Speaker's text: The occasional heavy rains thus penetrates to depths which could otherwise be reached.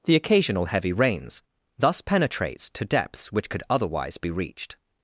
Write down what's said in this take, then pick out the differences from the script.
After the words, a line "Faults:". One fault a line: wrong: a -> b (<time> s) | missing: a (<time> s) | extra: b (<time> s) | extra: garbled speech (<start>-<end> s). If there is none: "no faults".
The occasional heavy rains thus penetrates to depths which could otherwise be reached.
Faults:
no faults